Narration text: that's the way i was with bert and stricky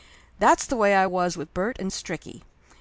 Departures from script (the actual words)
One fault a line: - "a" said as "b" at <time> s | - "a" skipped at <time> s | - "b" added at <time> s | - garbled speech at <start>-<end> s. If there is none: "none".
none